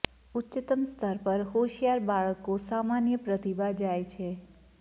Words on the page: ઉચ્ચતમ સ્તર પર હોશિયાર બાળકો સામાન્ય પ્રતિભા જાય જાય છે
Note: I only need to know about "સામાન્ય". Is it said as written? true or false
true